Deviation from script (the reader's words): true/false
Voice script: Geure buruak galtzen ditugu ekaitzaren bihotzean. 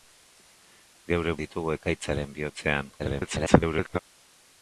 true